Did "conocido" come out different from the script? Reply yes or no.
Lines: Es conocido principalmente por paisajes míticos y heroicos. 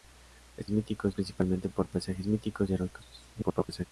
yes